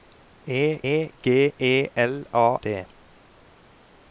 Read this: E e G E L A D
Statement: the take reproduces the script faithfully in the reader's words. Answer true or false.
true